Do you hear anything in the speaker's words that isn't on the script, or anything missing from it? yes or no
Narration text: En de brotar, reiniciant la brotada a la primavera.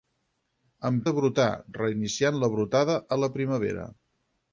no